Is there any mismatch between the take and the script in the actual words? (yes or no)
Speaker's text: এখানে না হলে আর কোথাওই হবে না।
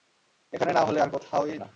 yes